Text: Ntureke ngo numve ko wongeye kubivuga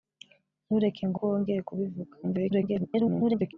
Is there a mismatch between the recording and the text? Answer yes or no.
yes